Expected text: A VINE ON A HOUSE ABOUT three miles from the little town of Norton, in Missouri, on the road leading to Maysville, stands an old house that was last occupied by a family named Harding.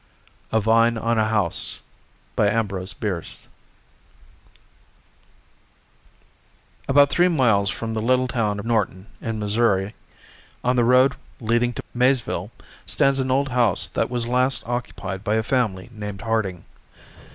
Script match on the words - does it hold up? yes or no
no